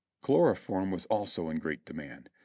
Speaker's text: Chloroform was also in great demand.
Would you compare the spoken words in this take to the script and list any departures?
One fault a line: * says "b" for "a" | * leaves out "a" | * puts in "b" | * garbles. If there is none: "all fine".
all fine